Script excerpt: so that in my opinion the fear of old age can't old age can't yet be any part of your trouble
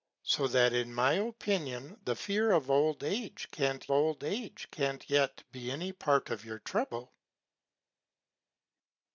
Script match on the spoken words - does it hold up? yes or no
yes